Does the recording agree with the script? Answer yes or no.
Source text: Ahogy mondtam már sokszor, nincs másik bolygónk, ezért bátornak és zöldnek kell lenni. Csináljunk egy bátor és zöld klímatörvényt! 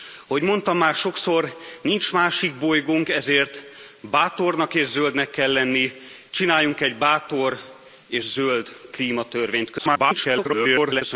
no